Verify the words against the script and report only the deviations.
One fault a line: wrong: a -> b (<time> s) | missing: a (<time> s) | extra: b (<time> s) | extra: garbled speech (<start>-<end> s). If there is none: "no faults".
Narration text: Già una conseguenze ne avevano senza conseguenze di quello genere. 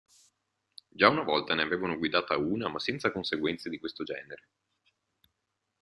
wrong: conseguenze -> volta (1.2 s)
extra: guidata una ma (1.9 s)
wrong: quello -> questo (3.8 s)